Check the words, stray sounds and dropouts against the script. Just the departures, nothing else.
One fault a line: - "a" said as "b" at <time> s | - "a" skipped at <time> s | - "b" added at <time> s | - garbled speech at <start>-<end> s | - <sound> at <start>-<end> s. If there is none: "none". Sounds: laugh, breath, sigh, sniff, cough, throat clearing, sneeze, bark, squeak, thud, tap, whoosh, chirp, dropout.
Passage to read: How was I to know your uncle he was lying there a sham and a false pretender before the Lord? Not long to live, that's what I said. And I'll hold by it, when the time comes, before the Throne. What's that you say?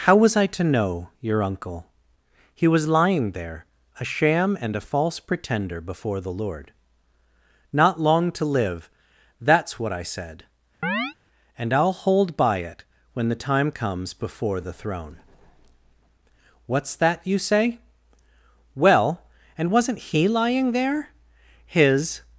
- chirp at 10.8-11.1 s
- "Well and wasn't he lying there his" added at 18.7 s